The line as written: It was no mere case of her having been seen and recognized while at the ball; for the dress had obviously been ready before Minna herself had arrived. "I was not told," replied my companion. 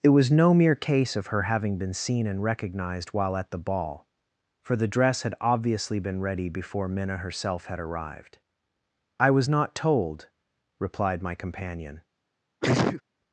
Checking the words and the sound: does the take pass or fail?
fail